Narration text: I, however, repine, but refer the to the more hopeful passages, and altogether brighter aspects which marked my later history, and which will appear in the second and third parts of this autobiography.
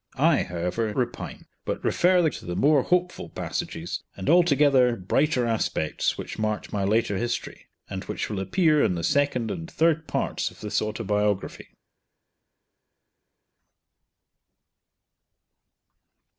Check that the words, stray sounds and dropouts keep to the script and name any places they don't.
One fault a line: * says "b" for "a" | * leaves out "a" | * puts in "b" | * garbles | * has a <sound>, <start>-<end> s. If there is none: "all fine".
all fine